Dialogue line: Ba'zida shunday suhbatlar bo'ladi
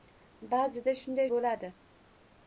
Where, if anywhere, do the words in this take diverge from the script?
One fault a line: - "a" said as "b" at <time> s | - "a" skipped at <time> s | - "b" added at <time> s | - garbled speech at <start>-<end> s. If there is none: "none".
- "suhbatlar" skipped at 1.3 s